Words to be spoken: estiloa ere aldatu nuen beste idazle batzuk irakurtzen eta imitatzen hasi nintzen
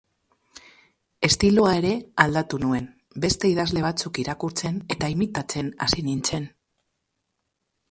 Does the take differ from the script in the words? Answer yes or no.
no